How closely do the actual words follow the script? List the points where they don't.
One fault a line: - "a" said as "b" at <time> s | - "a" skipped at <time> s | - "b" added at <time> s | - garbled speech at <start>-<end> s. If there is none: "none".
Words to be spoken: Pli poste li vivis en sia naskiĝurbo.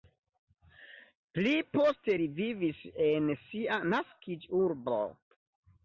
none